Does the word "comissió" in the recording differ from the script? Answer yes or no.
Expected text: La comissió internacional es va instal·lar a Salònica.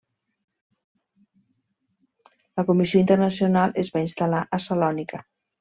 no